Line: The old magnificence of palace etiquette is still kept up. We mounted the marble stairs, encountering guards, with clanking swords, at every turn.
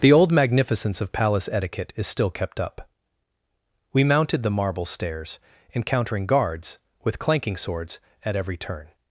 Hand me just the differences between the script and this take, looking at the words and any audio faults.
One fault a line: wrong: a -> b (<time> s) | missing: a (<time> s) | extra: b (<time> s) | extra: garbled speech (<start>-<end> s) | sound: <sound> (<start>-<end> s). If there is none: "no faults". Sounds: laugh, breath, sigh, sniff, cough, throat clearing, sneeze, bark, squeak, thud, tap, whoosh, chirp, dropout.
no faults